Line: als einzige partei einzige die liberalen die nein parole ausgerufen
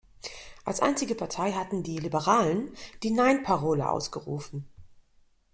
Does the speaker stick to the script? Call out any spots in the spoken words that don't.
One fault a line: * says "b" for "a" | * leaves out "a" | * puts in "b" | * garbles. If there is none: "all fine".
* says "hatten" for "einzige"